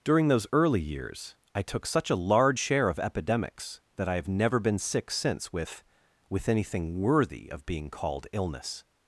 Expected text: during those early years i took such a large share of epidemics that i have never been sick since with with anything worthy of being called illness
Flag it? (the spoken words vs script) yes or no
no